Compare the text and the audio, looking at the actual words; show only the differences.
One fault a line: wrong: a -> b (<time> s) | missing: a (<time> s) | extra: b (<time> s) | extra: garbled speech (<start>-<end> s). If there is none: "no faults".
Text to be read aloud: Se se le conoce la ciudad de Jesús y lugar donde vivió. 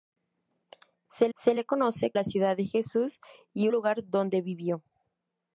no faults